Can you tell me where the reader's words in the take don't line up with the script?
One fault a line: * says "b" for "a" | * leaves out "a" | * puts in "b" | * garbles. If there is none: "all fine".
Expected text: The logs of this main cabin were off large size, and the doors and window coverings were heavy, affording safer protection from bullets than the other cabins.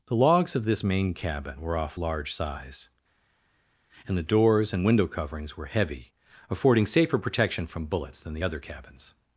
all fine